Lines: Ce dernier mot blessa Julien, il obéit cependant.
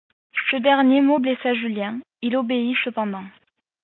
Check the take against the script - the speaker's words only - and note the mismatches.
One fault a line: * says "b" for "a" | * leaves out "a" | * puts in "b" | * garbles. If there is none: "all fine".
all fine